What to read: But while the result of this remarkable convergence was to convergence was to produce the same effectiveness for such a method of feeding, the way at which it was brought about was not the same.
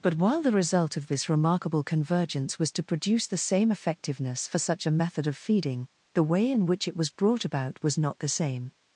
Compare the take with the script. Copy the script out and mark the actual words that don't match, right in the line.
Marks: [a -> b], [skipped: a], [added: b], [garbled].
But while the result of this remarkable convergence was to [skipped: convergence was to] produce the same effectiveness for such a method of feeding, the way [at -> in] which it was brought about was not the same.